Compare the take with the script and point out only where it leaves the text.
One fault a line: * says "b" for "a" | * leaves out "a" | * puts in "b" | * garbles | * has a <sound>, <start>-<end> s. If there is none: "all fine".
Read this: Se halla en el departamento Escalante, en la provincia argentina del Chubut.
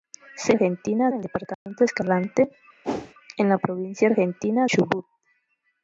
* says "argentina" for "halla"
* has a dropout, 1.5-1.7 s
* has a whoosh, 2.8-3.1 s
* leaves out "del"